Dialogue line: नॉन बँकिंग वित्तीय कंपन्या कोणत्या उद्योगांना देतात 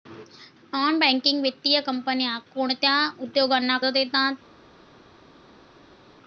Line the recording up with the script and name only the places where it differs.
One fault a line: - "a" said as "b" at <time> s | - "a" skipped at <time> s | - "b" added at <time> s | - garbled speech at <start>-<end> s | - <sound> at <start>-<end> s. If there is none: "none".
none